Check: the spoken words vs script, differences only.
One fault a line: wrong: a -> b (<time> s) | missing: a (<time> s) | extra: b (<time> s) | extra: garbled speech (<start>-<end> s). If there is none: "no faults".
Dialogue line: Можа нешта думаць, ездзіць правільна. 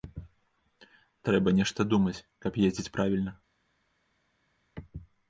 wrong: Можа -> Трэба (1.3 s)
extra: каб (2.5 s)